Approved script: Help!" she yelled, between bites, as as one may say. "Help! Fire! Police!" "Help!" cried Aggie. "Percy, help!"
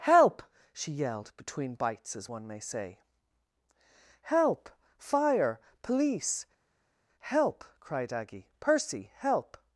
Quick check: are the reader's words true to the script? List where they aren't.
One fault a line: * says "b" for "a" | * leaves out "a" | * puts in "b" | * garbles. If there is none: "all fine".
* leaves out "as"